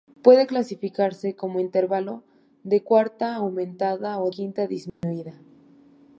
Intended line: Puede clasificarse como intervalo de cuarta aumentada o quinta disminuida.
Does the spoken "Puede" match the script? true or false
true